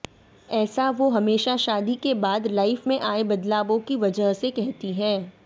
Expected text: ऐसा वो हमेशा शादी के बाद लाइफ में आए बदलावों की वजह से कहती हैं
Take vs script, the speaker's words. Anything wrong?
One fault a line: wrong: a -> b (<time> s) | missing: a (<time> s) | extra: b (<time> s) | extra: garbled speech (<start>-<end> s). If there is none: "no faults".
no faults